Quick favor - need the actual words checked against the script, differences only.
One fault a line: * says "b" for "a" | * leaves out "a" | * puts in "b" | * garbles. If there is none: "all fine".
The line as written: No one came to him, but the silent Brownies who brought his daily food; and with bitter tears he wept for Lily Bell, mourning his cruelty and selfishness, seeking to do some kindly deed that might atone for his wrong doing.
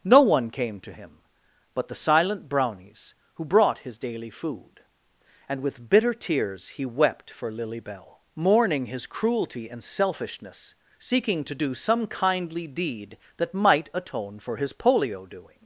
* says "polio" for "wrong"